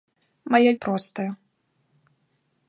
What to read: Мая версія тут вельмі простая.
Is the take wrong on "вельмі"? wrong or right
wrong